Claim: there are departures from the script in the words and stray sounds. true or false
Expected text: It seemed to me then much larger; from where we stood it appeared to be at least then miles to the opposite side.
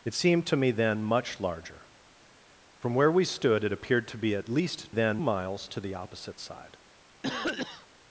true